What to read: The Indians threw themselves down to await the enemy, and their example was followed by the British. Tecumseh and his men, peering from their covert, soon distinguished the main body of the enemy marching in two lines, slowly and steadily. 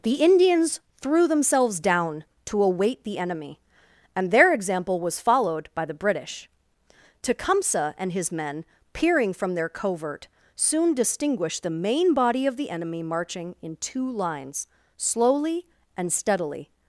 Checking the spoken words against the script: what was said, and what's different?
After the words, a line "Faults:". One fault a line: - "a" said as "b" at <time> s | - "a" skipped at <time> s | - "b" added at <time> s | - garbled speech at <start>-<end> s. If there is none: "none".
The Indians threw themselves down to await the enemy, and their example was followed by the British. Tecumseh and his men, peering from their covert, soon distinguished the main body of the enemy marching in two lines, slowly and steadily.
Faults:
none